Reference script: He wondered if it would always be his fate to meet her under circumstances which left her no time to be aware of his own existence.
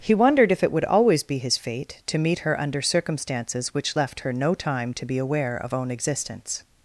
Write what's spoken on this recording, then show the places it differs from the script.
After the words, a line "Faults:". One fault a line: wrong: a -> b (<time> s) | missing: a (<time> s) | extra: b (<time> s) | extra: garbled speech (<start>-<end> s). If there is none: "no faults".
He wondered if it would always be his fate to meet her under circumstances which left her no time to be aware of own existence.
Faults:
missing: his (5.7 s)